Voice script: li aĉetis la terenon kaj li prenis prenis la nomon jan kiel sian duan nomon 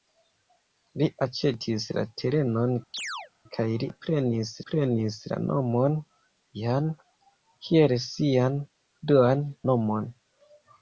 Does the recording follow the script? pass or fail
pass